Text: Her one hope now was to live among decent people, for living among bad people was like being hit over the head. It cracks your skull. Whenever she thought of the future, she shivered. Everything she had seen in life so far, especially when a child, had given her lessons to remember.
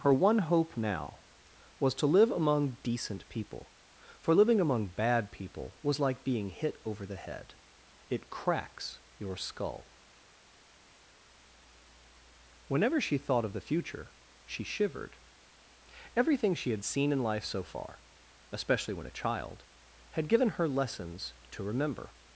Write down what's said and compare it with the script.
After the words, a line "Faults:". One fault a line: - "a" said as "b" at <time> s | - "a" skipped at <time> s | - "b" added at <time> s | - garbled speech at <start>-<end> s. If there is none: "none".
Her one hope now was to live among decent people, for living among bad people was like being hit over the head. It cracks your skull. Whenever she thought of the future, she shivered. Everything she had seen in life so far, especially when a child, had given her lessons to remember.
Faults:
none